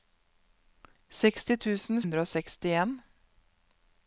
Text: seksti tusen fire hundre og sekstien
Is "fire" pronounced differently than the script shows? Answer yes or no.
yes